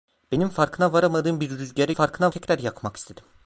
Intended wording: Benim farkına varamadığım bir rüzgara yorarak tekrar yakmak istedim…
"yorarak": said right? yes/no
no